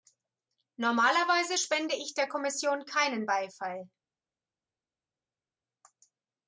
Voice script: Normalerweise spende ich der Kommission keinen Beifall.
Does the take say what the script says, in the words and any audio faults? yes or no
yes